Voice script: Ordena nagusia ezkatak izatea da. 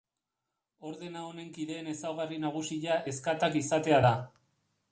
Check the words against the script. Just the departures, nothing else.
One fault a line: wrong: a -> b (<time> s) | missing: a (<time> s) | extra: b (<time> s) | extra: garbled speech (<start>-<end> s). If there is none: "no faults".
extra: honen kideen ezaugarri (1.2 s)